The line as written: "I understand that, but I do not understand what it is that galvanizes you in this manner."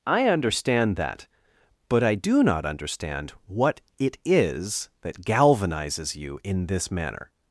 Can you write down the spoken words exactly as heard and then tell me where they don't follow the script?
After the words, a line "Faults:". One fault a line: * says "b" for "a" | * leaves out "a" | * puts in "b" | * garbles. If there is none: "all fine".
"I understand that, but I do not understand what it is that galvanizes you in this manner."
Faults:
all fine